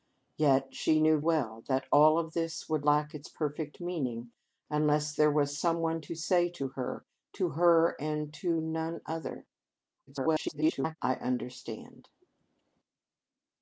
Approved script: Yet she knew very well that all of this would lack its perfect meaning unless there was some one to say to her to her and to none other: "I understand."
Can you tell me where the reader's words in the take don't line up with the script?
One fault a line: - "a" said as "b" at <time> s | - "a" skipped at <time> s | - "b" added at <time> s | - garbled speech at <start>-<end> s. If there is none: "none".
- "very" skipped at 1.2 s
- garbled speech at 10.1-11.0 s